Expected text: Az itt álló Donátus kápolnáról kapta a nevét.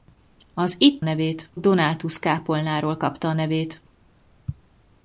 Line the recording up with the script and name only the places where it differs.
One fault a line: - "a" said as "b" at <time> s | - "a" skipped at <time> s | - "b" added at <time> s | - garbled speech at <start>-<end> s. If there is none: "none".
- "álló" said as "nevét" at 1.0 s